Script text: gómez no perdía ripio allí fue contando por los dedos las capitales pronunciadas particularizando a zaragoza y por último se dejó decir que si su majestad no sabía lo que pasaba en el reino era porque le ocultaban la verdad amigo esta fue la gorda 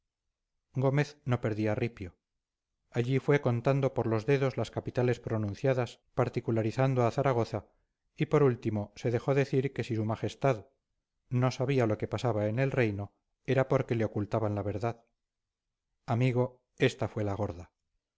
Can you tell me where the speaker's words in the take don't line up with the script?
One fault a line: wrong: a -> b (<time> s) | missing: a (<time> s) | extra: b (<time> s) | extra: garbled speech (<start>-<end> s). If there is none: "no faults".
no faults